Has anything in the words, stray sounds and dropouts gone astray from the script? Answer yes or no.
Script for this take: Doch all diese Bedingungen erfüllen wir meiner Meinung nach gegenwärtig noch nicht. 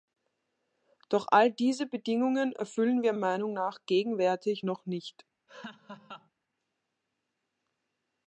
yes